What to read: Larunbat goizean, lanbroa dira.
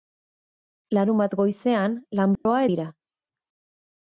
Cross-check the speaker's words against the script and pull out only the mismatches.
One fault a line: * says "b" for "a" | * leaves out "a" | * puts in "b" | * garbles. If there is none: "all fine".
all fine